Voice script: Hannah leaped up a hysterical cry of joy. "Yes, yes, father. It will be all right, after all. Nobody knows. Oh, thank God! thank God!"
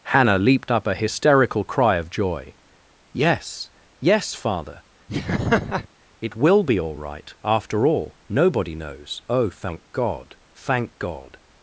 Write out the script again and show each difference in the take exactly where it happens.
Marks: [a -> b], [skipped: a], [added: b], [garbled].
Hannah leaped up a hysterical cry of joy. "Yes, yes, father. It will be all right, after all. Nobody knows. Oh, thank God! thank God!"